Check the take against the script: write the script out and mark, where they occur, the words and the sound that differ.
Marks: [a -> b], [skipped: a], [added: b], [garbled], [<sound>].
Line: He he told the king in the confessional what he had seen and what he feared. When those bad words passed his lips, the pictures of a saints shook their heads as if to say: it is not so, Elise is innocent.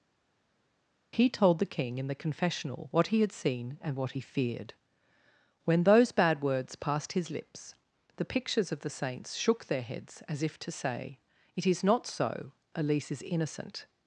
He [skipped: he] told the king in the confessional what he had seen and what he feared. When those bad words passed his lips, the pictures of [a -> the] saints shook their heads as if to say: it is not so, Elise is innocent.